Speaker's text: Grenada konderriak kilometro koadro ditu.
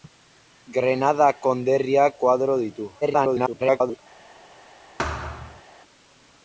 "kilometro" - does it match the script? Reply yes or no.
no